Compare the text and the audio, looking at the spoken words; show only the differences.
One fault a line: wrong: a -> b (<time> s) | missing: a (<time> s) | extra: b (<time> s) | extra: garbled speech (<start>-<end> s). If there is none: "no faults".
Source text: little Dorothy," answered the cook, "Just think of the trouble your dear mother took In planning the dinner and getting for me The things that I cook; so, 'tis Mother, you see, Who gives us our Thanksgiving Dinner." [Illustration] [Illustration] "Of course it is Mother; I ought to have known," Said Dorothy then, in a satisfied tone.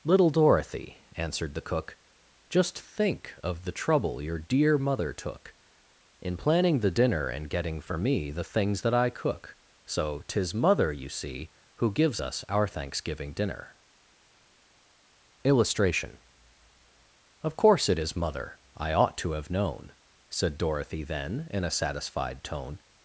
missing: Illustration (16.2 s)